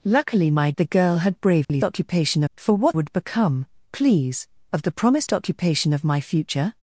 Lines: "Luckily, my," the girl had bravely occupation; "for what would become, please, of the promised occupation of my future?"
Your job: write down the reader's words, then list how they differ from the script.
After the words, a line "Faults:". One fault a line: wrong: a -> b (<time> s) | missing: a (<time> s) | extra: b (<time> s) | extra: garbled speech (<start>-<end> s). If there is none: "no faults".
"Luckily, my," the girl had bravely occupation; "for what would become, please, of the promised occupation of my future?"
Faults:
no faults